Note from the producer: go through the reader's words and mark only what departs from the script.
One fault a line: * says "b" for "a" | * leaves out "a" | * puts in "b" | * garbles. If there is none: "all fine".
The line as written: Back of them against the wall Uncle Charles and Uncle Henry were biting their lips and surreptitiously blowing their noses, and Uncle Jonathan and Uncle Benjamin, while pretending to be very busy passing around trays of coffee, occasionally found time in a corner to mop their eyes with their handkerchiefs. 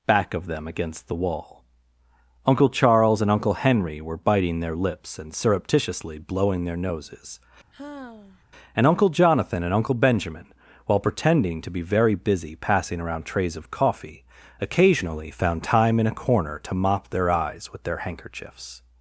all fine